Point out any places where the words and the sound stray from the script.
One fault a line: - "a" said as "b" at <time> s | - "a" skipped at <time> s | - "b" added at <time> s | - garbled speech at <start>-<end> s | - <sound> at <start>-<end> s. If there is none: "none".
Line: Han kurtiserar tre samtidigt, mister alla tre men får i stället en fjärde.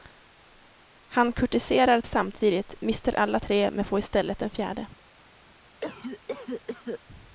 - "tre" skipped at 2.0 s
- cough at 5.8-7.0 s